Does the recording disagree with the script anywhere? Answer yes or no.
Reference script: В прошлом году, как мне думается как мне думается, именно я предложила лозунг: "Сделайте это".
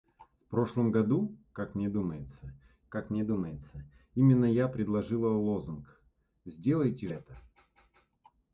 no